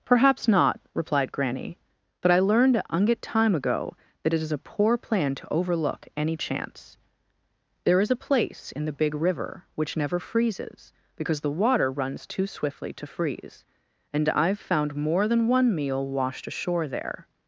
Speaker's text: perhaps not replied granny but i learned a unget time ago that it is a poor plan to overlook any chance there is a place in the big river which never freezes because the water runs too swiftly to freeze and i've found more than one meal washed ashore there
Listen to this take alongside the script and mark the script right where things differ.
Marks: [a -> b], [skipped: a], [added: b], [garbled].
perhaps not replied granny but i learned a unget time ago that it is a poor plan to overlook any chance there is a place in the big river which never freezes because the water runs too swiftly to freeze and i've found more than one meal washed ashore there